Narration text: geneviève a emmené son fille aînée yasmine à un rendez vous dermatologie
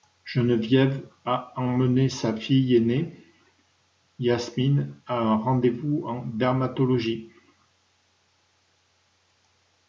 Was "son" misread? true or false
true